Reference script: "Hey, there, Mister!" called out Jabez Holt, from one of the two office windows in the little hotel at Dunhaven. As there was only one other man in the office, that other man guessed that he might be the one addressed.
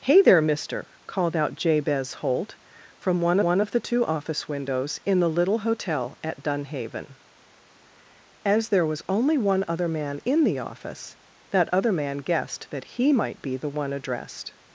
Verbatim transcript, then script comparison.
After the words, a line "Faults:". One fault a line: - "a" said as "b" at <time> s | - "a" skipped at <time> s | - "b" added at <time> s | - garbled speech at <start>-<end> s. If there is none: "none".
"Hey, there, Mister!" called out Jabez Holt, from one one of the two office windows in the little hotel at Dunhaven. As there was only one other man in the office, that other man guessed that he might be the one addressed.
Faults:
- "one" added at 3.4 s